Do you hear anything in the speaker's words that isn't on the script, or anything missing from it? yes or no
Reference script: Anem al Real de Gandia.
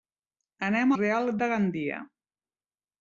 yes